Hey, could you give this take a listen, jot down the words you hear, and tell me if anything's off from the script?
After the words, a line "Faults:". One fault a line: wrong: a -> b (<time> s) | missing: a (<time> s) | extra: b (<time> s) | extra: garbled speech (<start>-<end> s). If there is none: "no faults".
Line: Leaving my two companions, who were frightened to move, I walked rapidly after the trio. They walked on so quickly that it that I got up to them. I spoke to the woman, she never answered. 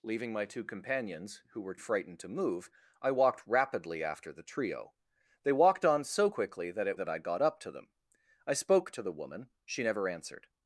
Leaving my two companions, who were frightened to move, I walked rapidly after the trio. They walked on so quickly that it that I got up to them. I spoke to the woman, she never answered.
Faults:
no faults